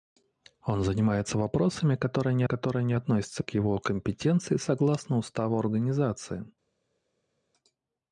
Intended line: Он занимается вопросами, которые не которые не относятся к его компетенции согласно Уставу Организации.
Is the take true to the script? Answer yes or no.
yes